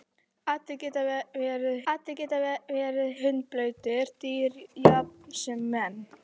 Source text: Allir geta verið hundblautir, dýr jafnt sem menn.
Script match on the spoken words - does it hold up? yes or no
no